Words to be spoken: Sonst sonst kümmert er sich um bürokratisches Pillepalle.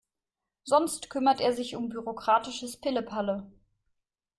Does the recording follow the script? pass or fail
fail